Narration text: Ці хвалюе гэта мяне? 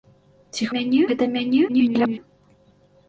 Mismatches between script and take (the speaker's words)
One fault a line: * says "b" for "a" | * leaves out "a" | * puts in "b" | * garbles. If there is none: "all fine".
* says "мяне" for "хвалюе"
* garbles